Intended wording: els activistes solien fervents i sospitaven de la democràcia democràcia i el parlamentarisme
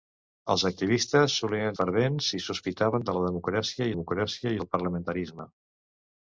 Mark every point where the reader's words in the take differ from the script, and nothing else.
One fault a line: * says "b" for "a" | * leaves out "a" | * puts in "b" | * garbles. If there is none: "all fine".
all fine